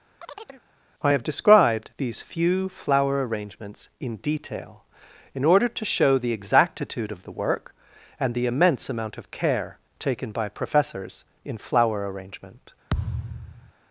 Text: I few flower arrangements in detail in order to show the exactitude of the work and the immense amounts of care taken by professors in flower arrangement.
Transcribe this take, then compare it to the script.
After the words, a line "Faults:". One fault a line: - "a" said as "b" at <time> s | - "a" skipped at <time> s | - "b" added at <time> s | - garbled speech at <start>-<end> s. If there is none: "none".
I have described these few flower arrangements in detail in order to show the exactitude of the work and the immense amount of care taken by professors in flower arrangement.
Faults:
- "have described these" added at 1.1 s
- "amounts" said as "amount" at 8.9 s